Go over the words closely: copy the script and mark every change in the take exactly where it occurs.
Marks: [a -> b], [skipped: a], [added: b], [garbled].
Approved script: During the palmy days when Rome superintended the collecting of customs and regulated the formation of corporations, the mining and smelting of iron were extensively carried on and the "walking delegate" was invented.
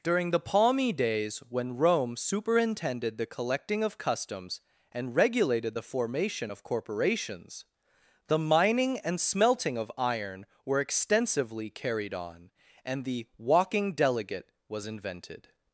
During the palmy days when Rome superintended the collecting of customs and regulated the formation of corporations, the mining and smelting of iron were extensively carried on and the "walking delegate" was invented.